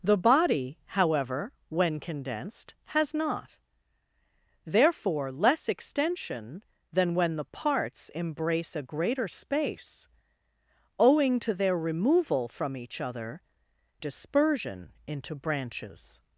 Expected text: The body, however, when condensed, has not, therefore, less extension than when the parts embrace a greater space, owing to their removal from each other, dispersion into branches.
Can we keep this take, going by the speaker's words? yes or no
yes